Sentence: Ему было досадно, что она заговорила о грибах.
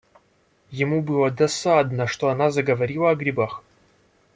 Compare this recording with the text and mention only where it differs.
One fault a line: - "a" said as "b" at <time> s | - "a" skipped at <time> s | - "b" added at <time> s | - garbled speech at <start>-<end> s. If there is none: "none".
none